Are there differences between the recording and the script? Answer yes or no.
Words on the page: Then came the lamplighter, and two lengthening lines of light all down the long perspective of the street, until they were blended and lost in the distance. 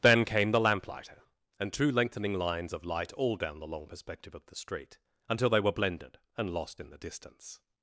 no